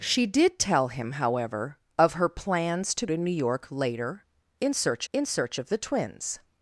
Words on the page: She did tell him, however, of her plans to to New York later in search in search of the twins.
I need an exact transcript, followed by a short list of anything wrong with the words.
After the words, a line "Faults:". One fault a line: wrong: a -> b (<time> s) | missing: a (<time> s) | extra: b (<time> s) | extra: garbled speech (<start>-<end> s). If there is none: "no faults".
She did tell him, however, of her plans to to New York later in search in search of the twins.
Faults:
no faults